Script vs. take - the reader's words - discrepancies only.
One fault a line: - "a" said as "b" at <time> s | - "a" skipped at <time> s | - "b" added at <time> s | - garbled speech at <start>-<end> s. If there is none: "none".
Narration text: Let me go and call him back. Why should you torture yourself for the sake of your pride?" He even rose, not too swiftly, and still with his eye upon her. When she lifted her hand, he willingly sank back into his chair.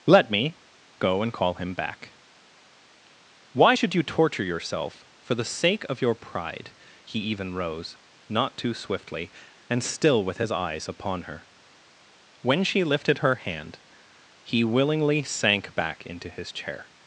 - "eye" said as "eyes" at 10.5 s